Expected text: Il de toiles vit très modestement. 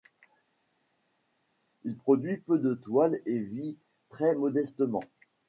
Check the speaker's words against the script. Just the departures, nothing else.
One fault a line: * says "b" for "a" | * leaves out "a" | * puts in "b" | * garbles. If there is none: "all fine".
* puts in "produit peu"
* puts in "et"